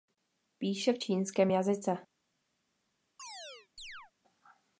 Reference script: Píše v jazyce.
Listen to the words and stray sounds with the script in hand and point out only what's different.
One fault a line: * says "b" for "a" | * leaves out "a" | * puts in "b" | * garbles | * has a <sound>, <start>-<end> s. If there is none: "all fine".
* puts in "čínském"
* has a chirp, 3.2-4.1 s